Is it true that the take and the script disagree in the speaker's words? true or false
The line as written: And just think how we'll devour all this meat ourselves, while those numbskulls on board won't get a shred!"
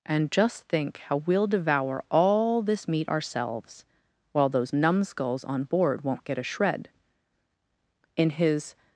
true